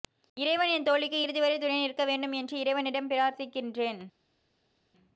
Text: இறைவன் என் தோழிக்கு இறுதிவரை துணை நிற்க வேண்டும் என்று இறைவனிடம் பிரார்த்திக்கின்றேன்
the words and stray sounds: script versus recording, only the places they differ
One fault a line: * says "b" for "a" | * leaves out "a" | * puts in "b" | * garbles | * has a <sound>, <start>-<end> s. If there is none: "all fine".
all fine